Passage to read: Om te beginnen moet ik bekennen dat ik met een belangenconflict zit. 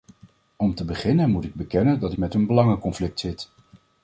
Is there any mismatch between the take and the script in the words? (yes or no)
yes